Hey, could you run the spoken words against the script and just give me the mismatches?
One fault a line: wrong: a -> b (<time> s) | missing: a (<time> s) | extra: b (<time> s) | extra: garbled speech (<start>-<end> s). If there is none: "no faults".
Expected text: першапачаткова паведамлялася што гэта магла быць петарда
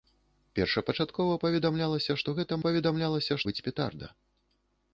wrong: магла -> паведамлялася (2.7 s)